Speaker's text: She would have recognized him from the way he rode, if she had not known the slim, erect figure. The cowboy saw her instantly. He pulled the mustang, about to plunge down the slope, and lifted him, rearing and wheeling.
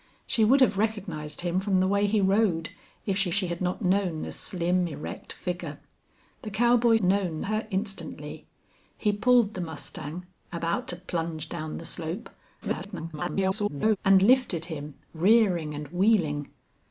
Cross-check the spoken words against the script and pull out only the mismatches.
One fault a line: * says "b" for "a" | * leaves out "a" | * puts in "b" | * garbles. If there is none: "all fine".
* puts in "she"
* says "known" for "saw"
* garbles